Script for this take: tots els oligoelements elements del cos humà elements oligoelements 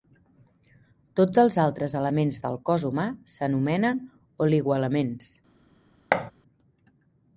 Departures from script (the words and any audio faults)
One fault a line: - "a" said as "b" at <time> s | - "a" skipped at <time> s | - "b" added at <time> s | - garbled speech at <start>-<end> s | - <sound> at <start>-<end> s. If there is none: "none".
- "oligoelements" said as "altres" at 1.6 s
- "elements" said as "s'anomenen" at 3.3 s
- thud at 6.1-6.3 s